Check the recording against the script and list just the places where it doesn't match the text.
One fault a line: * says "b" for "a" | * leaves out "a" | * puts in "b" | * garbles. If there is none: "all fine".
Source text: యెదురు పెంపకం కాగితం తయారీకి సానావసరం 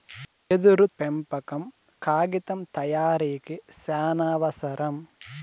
all fine